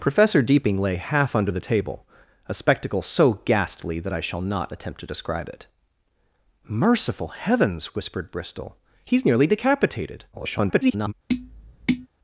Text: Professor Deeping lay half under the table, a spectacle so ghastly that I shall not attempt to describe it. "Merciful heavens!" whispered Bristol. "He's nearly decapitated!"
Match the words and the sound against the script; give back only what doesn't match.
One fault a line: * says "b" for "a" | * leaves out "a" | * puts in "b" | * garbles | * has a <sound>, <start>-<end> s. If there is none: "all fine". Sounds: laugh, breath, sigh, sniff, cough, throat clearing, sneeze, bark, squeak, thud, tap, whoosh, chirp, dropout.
* garbles
* has a tap, 11.3-12.1 s